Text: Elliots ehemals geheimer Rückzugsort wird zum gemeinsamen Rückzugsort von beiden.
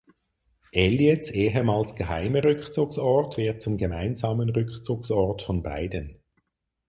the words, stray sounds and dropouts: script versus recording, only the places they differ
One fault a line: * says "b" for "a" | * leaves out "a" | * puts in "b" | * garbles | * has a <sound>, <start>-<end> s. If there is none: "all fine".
all fine